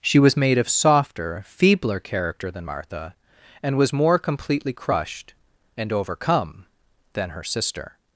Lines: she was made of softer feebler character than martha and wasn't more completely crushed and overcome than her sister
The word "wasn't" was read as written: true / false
false